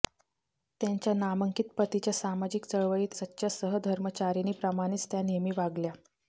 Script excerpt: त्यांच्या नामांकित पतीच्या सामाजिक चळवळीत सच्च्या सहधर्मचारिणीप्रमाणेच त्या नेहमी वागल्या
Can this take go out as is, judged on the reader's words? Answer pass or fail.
pass